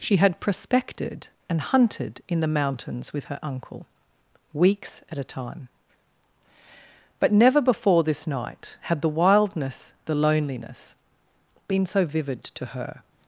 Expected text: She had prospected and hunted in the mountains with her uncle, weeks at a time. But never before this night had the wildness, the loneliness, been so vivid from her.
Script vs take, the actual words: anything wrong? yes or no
yes